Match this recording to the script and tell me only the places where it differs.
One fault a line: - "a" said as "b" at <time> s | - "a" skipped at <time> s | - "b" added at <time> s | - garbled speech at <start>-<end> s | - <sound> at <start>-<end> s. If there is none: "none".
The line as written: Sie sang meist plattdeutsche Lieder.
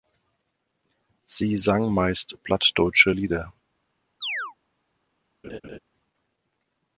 - chirp at 4.2-4.5 s
- laugh at 5.4-5.8 s